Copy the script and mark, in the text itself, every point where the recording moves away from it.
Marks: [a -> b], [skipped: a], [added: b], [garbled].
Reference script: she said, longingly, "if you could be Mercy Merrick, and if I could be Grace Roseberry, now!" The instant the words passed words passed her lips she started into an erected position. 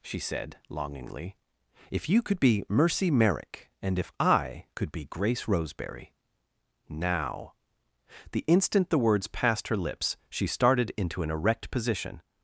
she said, longingly, "if you could be Mercy Merrick, and if I could be Grace Roseberry, now!" The instant the words passed [skipped: words passed] her lips she started into an [erected -> erect] position.